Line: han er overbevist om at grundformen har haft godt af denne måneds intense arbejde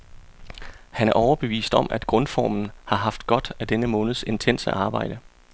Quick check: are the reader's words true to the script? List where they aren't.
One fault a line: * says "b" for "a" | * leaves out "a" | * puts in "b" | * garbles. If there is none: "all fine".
all fine